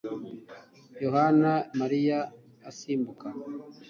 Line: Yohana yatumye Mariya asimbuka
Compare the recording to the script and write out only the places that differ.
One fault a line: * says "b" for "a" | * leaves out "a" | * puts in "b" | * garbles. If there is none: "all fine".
* leaves out "yatumye"